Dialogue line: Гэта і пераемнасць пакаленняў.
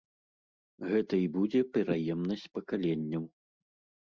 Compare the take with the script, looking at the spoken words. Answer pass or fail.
fail